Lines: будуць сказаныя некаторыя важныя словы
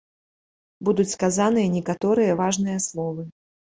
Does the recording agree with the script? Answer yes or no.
yes